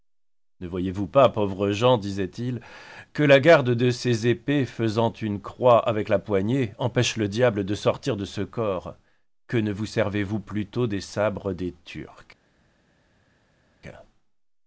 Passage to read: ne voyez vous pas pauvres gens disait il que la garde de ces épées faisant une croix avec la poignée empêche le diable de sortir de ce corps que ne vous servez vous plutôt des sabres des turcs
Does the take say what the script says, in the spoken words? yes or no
yes